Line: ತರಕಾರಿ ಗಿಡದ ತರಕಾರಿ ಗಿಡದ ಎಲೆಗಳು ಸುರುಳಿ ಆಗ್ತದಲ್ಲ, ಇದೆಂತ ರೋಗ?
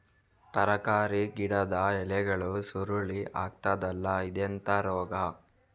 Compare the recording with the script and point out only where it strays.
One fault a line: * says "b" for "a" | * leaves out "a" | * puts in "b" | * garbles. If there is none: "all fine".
* leaves out "ತರಕಾರಿ ಗಿಡದ"